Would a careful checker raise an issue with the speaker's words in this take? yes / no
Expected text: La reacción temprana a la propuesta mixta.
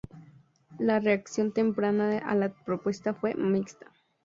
yes